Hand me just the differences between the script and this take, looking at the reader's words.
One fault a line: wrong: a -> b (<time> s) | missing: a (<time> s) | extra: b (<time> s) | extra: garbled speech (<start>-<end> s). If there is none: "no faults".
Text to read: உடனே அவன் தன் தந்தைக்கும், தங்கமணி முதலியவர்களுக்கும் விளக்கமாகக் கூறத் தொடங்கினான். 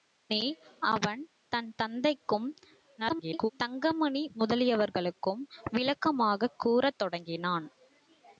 extra: garbled speech (3.0-3.5 s)